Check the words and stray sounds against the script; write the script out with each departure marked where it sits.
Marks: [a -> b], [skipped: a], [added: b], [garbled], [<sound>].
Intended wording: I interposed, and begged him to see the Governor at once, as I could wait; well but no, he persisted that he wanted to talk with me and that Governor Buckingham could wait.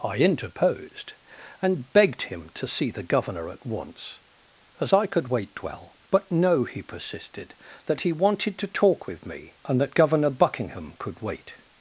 I interposed, and begged him to see the Governor at once, as I could wait; well but no, he persisted that he wanted to talk with me and that Governor Buckingham could wait.